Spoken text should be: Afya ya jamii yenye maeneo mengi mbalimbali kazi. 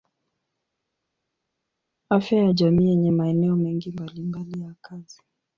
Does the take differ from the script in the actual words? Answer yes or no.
yes